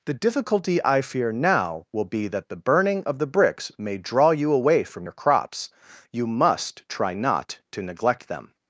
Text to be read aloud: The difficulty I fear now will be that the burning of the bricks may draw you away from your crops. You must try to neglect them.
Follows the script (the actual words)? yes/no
no